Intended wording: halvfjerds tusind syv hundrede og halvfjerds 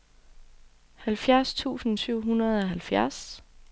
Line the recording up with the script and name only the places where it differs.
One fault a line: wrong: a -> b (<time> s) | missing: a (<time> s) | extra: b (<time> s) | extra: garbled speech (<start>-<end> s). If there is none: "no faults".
no faults